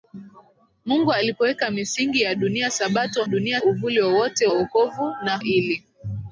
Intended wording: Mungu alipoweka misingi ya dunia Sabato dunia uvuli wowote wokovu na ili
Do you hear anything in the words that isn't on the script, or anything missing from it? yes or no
no